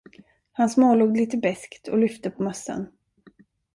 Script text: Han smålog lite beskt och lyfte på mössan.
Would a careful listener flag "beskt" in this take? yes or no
no